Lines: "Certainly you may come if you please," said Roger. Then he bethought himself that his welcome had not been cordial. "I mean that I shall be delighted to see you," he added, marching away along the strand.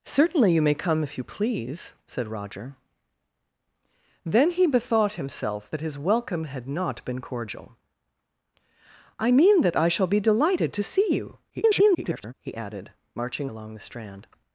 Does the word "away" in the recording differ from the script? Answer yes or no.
yes